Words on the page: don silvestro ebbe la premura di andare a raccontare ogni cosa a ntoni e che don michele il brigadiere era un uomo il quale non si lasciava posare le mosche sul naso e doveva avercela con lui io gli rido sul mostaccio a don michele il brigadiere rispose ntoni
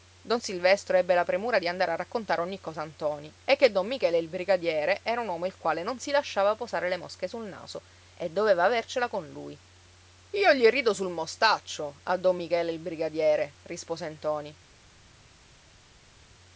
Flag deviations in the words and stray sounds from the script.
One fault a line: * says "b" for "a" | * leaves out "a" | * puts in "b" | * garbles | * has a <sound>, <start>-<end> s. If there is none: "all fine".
all fine